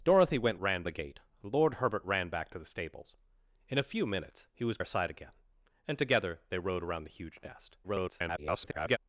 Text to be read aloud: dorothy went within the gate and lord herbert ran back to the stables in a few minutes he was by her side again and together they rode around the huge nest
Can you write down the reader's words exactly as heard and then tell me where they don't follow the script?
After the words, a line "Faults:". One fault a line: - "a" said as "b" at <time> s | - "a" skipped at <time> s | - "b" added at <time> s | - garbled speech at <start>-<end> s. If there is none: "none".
dorothy went ran the gate and lord herbert ran back to the stables in a few minutes he was her side again and together they rode around the huge nest [garbled]
Faults:
- "within" said as "ran" at 0.6 s
- "by" skipped at 4.8 s
- garbled speech at 7.8-9.0 s